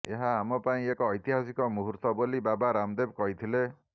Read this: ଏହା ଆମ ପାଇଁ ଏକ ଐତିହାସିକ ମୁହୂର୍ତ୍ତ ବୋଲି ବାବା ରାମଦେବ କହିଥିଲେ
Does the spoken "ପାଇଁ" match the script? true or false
true